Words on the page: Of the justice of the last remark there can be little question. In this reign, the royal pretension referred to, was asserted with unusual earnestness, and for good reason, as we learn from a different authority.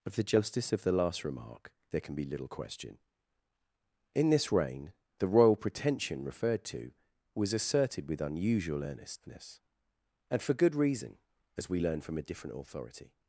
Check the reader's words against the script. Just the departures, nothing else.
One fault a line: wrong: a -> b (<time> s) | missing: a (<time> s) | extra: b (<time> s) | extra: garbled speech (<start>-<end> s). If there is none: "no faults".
no faults